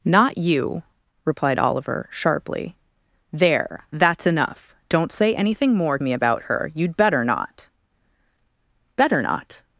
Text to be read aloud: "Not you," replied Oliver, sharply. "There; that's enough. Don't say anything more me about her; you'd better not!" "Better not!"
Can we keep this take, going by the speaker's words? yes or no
yes